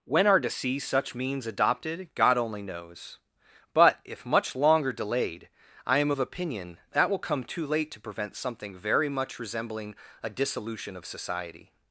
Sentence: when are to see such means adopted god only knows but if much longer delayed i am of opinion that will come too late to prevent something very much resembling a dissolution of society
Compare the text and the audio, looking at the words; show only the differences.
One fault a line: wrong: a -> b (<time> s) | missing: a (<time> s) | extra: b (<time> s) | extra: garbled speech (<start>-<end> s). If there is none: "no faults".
no faults